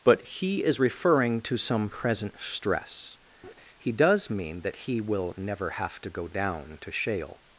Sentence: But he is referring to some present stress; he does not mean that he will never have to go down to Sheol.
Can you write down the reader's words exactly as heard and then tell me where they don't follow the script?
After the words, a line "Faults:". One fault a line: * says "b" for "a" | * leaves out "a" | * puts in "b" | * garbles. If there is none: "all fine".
But he is referring to some present stress; he does mean that he will never have to go down to Sheol.
Faults:
* leaves out "not"